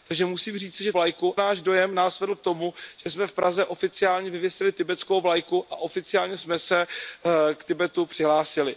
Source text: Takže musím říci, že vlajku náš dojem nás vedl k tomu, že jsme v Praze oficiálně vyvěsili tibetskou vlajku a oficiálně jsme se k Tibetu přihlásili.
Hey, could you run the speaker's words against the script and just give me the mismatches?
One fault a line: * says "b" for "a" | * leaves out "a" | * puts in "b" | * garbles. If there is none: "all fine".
all fine